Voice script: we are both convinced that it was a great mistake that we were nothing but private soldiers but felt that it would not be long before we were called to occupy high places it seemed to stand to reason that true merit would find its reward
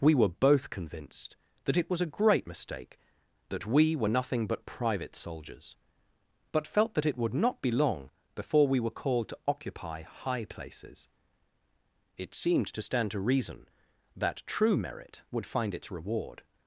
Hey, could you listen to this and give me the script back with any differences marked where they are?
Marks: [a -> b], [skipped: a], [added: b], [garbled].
we [are -> were] both convinced that it was a great mistake that we were nothing but private soldiers but felt that it would not be long before we were called to occupy high places it seemed to stand to reason that true merit would find its reward